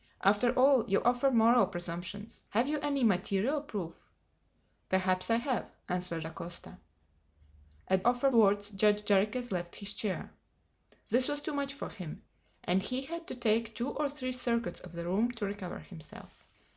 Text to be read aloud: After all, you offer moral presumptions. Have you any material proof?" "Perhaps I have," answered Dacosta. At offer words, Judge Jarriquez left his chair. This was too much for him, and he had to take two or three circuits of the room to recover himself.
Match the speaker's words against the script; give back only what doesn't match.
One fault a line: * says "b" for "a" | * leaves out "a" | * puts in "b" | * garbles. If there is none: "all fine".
all fine